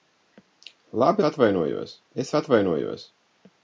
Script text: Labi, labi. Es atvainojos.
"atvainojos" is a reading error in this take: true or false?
false